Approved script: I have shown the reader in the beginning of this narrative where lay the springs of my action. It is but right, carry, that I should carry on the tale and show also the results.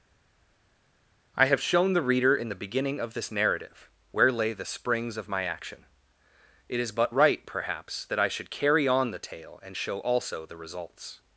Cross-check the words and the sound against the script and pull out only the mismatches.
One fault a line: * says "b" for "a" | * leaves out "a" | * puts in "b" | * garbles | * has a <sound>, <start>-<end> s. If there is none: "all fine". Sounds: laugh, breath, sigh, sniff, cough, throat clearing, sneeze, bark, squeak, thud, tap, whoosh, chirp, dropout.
* says "perhaps" for "carry"